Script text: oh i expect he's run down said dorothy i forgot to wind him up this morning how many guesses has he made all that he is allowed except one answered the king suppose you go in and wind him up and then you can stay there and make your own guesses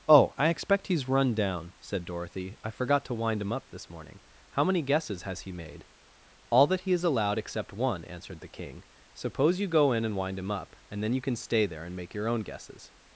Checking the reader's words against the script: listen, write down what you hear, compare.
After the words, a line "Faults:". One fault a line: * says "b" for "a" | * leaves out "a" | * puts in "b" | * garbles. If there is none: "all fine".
oh i expect he's run down said dorothy i forgot to wind him up this morning how many guesses has he made all that he is allowed except one answered the king suppose you go in and wind him up and then you can stay there and make your own guesses
Faults:
all fine